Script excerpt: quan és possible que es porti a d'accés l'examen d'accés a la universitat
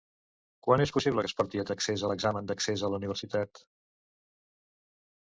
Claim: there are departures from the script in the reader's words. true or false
false